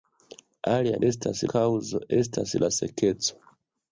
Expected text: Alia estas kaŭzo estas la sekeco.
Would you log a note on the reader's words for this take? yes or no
no